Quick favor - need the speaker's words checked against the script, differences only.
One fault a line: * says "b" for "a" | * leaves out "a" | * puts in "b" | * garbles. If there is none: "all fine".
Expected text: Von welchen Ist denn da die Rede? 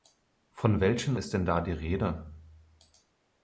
all fine